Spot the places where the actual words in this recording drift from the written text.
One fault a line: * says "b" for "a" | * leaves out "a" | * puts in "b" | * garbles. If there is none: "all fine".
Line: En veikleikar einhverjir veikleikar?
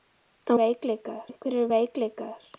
all fine